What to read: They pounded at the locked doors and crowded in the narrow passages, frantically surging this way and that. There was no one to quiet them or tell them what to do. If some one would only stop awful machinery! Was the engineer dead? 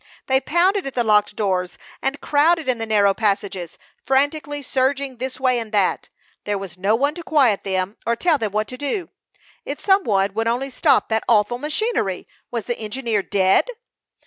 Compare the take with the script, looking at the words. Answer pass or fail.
fail